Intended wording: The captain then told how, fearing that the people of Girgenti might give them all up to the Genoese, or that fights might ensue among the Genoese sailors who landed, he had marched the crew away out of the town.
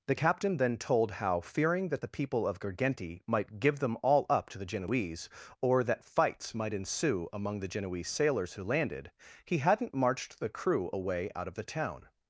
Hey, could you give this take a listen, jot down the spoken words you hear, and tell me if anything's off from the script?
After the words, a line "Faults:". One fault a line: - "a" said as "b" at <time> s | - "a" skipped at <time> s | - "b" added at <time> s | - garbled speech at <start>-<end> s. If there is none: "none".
The captain then told how, fearing that the people of Girgenti might give them all up to the Genoese, or that fights might ensue among the Genoese sailors who landed, he hadn't marched the crew away out of the town.
Faults:
- "had" said as "hadn't" at 9.6 s